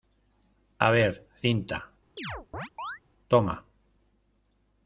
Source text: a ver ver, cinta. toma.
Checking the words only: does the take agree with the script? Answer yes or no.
no